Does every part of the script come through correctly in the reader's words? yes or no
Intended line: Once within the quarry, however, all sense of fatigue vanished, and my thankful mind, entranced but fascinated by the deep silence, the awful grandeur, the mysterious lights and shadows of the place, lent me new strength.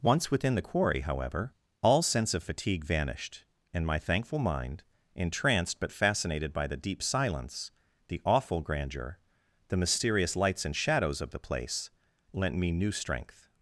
yes